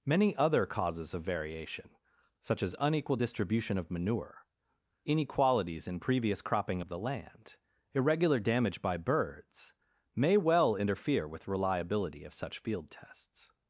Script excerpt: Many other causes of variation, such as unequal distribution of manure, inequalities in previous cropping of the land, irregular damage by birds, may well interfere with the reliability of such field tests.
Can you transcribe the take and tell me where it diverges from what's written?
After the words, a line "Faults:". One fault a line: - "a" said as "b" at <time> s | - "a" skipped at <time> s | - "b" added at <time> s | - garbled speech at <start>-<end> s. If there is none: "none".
Many other causes of variation, such as unequal distribution of manure, inequalities in previous cropping of the land, irregular damage by birds, may well interfere with reliability of such field tests.
Faults:
- "the" skipped at 11.5 s